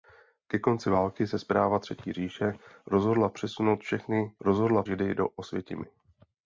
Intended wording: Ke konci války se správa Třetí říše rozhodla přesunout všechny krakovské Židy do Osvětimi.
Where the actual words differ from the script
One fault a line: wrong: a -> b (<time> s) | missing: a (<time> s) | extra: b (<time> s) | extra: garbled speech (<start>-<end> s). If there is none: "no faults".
wrong: krakovské -> rozhodla (4.4 s)